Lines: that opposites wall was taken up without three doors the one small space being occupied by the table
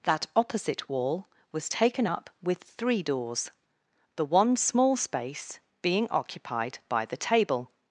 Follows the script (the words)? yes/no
no